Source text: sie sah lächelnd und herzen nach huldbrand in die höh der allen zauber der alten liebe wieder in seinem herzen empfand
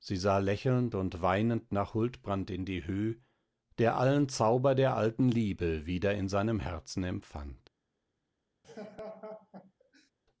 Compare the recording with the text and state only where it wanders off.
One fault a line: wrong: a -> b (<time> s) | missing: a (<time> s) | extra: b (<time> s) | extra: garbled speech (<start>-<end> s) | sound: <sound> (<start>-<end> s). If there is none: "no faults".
wrong: herzen -> weinend (1.2 s)
sound: laugh (8.6-10.1 s)